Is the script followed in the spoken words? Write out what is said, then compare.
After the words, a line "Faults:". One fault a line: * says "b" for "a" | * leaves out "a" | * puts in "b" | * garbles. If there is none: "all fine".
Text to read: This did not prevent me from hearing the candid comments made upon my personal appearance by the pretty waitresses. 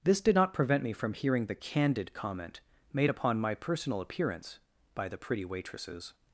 This did not prevent me from hearing the candid comment made upon my personal appearance by the pretty waitresses.
Faults:
* says "comment" for "comments"